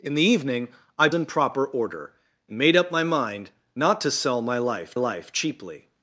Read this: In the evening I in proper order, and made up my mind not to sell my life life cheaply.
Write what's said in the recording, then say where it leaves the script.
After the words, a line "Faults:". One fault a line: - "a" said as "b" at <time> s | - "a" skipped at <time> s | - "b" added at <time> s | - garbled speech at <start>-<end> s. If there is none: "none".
In the evening I in proper order, and made up my mind not to sell my life life cheaply.
Faults:
none